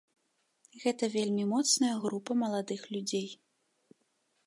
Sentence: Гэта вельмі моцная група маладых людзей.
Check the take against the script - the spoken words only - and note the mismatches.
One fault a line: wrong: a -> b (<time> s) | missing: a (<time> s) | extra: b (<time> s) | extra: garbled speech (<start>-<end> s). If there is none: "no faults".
no faults